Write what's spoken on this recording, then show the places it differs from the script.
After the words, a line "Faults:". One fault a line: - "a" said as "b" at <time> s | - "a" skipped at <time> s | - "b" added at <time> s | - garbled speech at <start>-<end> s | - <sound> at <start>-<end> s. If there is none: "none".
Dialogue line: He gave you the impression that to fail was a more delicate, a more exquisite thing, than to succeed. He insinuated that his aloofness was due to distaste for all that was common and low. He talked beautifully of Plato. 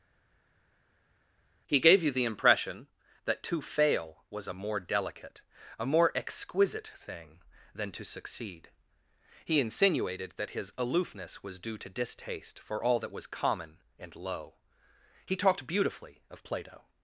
He gave you the impression that to fail was a more delicate, a more exquisite thing, than to succeed. He insinuated that his aloofness was due to distaste for all that was common and low. He talked beautifully of Plato.
Faults:
none